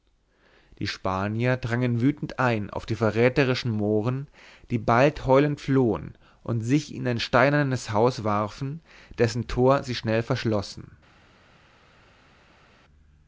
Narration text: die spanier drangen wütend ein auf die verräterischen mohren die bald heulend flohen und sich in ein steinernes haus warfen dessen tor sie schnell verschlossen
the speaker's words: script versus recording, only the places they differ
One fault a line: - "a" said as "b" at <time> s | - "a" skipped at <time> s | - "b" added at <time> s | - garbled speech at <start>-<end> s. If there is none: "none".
none